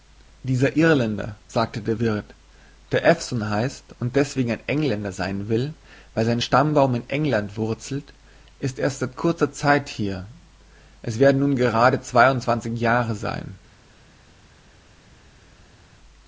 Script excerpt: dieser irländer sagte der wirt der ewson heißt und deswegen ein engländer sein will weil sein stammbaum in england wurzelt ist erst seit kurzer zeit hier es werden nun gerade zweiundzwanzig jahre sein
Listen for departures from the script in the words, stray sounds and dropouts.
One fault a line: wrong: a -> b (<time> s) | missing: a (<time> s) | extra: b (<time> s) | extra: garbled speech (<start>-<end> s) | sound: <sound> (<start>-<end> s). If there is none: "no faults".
no faults